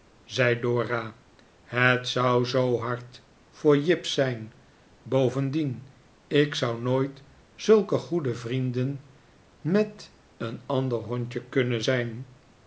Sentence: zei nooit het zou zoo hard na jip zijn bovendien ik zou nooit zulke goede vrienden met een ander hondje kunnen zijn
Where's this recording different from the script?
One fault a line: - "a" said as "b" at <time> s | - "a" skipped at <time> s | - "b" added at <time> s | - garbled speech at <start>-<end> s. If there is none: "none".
- "nooit" said as "dora" at 0.6 s
- "na" said as "voor" at 3.5 s